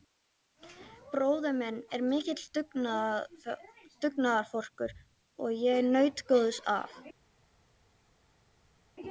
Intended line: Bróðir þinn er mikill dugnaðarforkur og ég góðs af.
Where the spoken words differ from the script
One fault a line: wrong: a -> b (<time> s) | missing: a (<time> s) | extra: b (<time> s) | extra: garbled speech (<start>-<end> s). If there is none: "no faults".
wrong: þinn -> minn (1.6 s)
extra: naut (6.0 s)